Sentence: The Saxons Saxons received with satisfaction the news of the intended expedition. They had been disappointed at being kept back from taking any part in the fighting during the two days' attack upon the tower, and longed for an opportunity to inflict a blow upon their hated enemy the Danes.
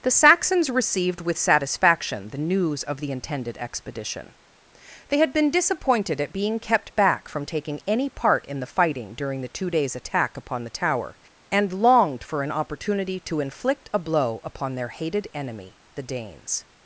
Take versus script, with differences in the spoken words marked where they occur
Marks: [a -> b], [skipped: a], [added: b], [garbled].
The Saxons [skipped: Saxons] received with satisfaction the news of the intended expedition. They had been disappointed at being kept back from taking any part in the fighting during the two days' attack upon the tower, and longed for an opportunity to inflict a blow upon their hated enemy the Danes.